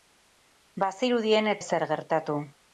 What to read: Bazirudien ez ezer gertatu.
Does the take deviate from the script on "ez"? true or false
false